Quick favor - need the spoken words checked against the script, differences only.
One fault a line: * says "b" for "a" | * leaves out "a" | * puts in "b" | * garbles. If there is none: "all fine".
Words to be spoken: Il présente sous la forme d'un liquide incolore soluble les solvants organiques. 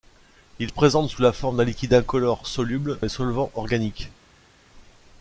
all fine